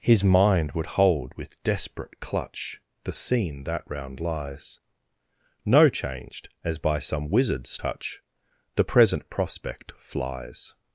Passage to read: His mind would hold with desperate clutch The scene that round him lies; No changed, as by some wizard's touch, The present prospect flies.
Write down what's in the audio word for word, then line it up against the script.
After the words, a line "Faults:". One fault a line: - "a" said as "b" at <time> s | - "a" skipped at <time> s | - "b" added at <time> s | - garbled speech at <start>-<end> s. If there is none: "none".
His mind would hold with desperate clutch The scene that round lies; No changed, as by some wizard's touch, The present prospect flies.
Faults:
- "him" skipped at 4.2 s